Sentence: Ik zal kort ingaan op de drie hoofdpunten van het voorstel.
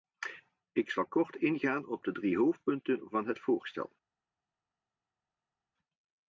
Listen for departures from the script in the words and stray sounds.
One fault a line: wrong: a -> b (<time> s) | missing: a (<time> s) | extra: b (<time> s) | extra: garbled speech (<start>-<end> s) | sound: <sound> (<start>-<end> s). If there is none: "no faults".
no faults